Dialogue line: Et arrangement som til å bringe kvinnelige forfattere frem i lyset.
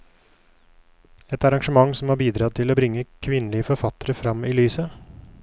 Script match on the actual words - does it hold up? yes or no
no